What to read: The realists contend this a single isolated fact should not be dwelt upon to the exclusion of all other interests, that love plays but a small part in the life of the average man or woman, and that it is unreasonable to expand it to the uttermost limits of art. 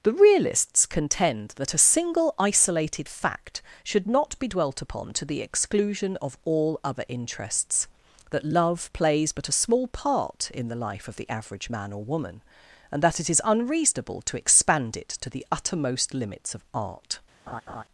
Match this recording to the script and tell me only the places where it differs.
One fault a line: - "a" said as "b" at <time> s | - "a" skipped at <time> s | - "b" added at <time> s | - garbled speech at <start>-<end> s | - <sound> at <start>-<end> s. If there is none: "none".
- "this" said as "that" at 1.6 s
- laugh at 17.5-17.8 s